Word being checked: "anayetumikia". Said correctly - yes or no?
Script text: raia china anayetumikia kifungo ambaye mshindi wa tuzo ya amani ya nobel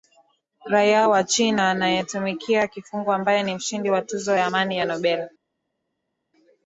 yes